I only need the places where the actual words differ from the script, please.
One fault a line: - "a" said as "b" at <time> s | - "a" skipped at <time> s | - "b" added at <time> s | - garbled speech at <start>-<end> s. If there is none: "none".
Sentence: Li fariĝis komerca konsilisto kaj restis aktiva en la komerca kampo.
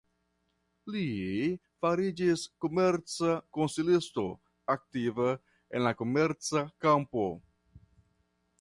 - "kaj restis" skipped at 4.2 s